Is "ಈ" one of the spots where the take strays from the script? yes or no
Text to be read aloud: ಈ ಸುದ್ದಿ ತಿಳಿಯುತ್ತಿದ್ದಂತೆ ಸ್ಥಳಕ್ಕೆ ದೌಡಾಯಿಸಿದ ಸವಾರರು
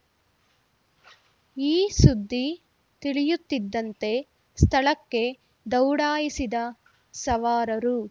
no